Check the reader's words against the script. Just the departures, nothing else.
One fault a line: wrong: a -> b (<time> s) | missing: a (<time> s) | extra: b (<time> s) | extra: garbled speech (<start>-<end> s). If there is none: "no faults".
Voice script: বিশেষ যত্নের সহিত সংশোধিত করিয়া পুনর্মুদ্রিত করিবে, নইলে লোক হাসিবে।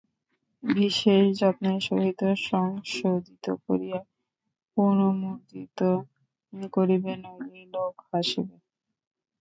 no faults